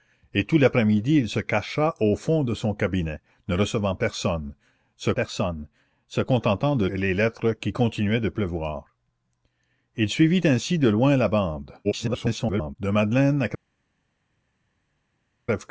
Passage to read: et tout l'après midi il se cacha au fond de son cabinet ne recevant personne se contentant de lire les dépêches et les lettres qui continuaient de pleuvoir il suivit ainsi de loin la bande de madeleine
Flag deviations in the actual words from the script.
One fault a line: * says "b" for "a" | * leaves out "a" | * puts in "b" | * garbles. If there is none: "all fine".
* puts in "personne se"
* leaves out "lire les dépêches"
* garbles